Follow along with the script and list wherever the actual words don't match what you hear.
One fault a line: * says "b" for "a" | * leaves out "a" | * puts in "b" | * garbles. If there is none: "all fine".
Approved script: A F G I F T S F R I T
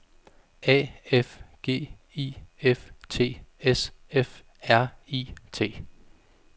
all fine